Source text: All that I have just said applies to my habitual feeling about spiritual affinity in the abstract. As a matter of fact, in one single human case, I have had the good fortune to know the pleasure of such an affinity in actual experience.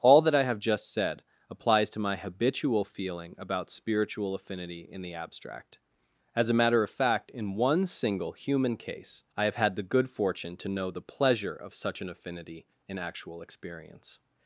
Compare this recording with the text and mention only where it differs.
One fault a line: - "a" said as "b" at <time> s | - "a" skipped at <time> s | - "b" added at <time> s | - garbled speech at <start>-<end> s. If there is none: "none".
none